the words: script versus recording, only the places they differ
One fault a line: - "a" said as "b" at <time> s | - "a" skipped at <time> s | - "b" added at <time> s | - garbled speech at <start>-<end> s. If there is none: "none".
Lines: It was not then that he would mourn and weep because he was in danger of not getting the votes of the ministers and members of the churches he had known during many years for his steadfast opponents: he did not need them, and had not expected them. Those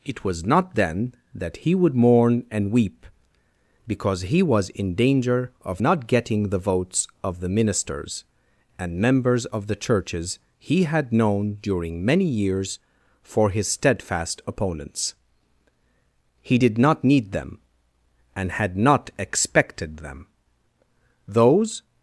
none